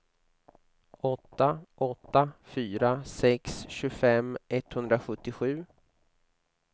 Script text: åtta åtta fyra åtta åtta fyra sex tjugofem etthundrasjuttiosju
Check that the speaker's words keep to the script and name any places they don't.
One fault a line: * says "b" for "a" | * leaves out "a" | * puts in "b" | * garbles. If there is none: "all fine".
* leaves out "åtta åtta fyra"